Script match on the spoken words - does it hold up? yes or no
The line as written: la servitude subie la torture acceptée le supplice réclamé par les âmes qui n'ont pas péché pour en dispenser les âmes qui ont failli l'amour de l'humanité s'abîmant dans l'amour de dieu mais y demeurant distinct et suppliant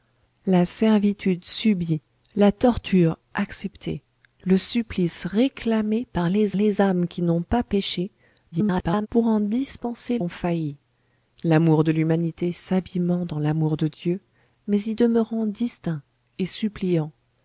no